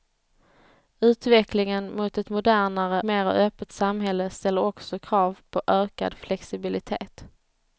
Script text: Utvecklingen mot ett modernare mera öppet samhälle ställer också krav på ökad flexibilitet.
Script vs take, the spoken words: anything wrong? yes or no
no